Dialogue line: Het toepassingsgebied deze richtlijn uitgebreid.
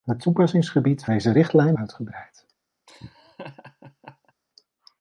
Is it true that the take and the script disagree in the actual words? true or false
false